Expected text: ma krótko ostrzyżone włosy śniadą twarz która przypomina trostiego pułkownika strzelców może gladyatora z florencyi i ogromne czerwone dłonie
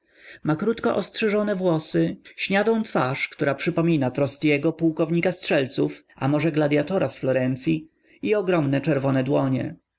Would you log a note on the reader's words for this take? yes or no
yes